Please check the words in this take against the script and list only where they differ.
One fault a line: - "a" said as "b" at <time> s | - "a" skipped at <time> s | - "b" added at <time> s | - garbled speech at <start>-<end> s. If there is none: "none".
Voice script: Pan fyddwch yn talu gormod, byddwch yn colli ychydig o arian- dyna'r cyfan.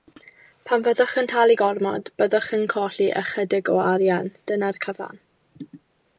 none